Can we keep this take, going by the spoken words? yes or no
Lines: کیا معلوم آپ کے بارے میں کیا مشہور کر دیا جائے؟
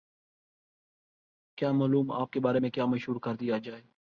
yes